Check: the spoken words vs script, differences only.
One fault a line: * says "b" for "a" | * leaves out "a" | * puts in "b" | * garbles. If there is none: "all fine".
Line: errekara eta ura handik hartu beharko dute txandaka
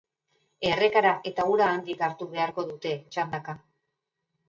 all fine